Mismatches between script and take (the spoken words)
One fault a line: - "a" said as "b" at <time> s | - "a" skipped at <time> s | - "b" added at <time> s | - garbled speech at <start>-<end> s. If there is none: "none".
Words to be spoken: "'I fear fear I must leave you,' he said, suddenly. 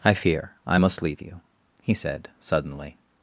- "fear" skipped at 0.5 s